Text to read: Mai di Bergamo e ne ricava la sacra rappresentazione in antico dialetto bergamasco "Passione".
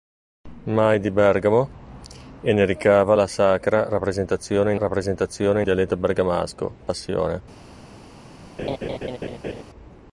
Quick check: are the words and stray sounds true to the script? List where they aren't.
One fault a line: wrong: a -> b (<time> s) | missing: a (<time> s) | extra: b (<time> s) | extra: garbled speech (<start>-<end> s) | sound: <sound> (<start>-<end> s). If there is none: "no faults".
wrong: antico -> rappresentazione (4.8 s)
sound: laugh (8.6-9.6 s)